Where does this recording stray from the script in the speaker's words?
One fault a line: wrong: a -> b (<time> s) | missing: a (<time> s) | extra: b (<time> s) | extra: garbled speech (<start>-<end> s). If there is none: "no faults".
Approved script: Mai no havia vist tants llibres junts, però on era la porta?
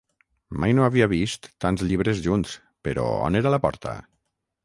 no faults